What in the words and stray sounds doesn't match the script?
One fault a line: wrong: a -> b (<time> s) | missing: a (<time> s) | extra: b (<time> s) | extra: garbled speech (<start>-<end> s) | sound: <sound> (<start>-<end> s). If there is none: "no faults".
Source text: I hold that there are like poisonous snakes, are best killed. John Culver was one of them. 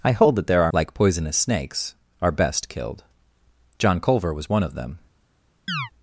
sound: chirp (5.7-5.9 s)